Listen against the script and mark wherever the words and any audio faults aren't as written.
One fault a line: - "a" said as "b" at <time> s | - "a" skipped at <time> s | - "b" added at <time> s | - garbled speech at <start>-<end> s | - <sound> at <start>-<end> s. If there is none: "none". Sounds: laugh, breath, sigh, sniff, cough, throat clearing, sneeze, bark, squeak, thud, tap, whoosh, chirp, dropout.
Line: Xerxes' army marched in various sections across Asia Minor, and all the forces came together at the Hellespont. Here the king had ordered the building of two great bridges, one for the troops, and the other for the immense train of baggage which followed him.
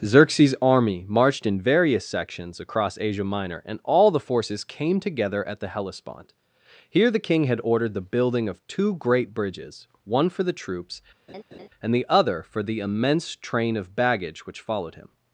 - laugh at 11.3-11.7 s